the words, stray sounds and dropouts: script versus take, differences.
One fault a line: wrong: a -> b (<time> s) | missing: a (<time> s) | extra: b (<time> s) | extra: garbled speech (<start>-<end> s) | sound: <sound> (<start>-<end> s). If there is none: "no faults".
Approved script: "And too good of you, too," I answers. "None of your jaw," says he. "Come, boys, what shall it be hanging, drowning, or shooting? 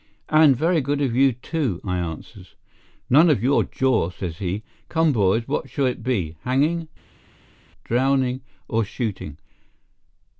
wrong: too -> very (0.6 s)